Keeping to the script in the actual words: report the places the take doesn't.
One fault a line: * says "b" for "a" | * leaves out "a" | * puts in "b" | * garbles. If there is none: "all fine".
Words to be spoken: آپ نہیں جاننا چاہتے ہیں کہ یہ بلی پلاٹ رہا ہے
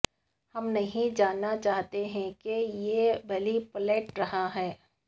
* says "ہم" for "آپ"